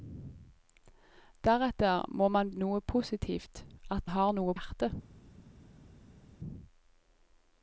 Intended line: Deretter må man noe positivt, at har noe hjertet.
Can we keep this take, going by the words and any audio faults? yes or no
yes